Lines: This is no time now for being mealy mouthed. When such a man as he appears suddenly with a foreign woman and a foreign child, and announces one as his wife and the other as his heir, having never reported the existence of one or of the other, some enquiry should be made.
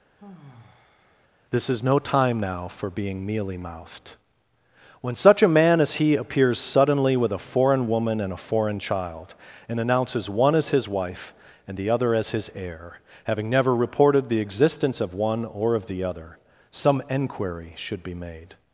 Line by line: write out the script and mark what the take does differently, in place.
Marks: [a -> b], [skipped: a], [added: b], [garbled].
This is no time now for being mealy mouthed. When such a man as he appears suddenly with a foreign woman and a foreign child, and announces one as his wife and the other as his heir, having never reported the existence of one or of the other, some enquiry should be made.